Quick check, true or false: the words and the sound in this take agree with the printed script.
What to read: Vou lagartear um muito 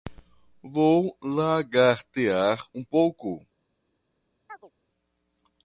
false